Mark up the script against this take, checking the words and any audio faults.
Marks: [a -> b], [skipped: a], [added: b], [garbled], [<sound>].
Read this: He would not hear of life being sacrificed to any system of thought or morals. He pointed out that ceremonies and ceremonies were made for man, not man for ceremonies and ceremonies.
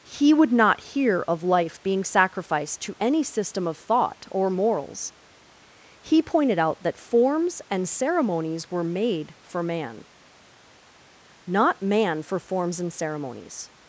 He would not hear of life being sacrificed to any system of thought or morals. He pointed out that [ceremonies -> forms] and ceremonies were made for man, not man for [ceremonies -> forms] and ceremonies.